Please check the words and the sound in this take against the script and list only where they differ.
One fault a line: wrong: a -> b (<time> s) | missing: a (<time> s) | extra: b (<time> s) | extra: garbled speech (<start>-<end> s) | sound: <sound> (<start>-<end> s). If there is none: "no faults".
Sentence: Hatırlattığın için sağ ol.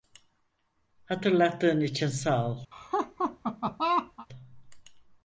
sound: laugh (2.7-4.3 s)